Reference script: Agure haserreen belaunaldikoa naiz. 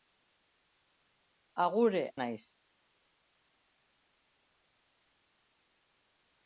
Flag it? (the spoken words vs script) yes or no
yes